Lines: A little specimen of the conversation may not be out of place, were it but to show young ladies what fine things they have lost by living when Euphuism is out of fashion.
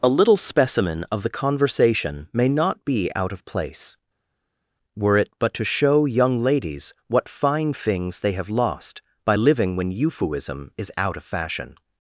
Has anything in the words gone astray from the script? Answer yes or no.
no